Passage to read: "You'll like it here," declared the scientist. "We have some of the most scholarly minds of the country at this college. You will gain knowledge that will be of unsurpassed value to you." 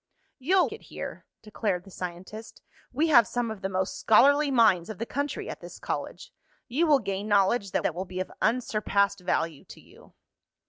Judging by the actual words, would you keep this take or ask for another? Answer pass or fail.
fail